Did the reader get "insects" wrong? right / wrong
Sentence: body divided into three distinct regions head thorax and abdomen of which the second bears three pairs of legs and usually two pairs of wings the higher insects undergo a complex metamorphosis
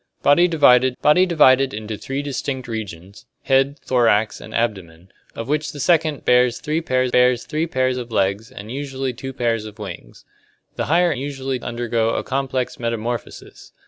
wrong